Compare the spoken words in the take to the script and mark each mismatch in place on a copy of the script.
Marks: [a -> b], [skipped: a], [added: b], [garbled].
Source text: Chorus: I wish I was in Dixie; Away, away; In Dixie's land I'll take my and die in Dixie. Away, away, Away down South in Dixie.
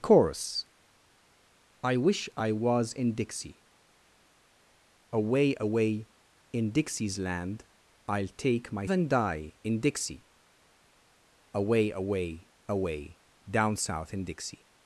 Chorus: I wish I was in Dixie; Away, away; In Dixie's land I'll take my and die in Dixie. Away, away, Away down South in Dixie.